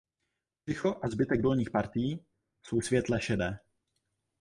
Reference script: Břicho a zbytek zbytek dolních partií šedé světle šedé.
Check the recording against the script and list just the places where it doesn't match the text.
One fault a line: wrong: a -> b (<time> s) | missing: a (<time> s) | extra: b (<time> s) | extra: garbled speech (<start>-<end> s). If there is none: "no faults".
missing: zbytek (1.4 s)
wrong: šedé -> jsou (2.7 s)